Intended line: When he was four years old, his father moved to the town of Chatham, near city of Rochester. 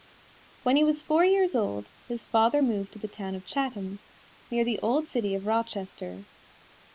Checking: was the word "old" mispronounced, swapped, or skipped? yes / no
no